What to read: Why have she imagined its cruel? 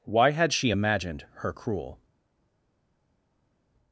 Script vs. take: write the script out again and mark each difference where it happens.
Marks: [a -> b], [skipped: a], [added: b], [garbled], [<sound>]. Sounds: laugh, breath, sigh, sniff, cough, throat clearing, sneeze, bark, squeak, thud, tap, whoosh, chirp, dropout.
Why [have -> had] she imagined [its -> her] cruel?